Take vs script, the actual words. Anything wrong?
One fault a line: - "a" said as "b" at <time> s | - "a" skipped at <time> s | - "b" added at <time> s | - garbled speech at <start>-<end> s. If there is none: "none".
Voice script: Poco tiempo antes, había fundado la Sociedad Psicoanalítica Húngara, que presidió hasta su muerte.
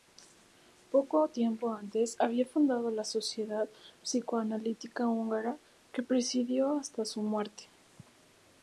none